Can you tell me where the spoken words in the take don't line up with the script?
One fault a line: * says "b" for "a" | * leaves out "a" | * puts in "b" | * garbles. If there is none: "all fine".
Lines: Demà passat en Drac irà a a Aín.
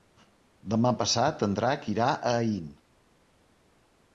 * leaves out "a"